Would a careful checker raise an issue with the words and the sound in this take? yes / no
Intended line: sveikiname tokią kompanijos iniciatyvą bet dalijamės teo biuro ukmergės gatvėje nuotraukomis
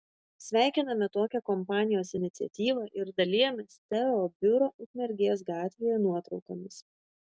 yes